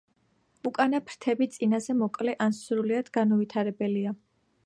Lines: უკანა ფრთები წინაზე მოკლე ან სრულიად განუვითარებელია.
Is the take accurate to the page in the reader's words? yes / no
yes